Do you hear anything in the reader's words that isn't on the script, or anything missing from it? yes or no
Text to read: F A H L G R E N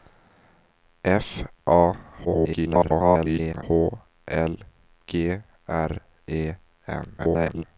yes